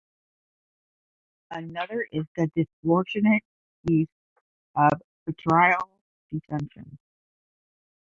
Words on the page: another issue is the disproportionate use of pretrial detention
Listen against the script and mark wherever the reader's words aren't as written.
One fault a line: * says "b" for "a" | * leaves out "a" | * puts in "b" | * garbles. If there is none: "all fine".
* leaves out "issue"